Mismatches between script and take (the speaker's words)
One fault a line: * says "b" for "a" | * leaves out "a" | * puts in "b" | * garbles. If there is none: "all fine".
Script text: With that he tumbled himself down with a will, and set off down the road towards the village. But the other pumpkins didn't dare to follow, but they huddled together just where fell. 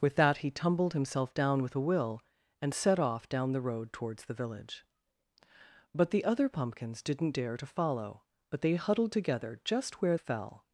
all fine